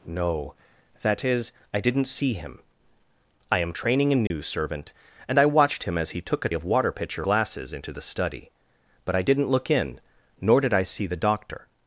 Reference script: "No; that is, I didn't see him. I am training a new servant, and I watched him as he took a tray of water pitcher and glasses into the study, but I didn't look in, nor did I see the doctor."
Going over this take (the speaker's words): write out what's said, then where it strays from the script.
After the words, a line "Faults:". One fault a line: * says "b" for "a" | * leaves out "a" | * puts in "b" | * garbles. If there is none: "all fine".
"No; that is, I didn't see him. I am training a new servant, and I watched him as he took a of water pitcher glasses into the study, but I didn't look in, nor did I see the doctor."
Faults:
* leaves out "tray"
* leaves out "and"